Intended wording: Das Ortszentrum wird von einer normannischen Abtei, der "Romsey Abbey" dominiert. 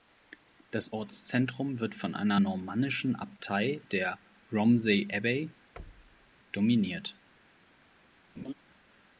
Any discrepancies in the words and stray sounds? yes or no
yes